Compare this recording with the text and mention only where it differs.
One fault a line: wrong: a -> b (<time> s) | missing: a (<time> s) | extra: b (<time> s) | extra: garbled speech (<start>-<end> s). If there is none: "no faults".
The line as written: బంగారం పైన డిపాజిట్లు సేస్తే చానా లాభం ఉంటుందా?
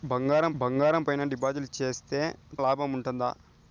extra: బంగారం (0.5 s)
missing: చానా (2.2 s)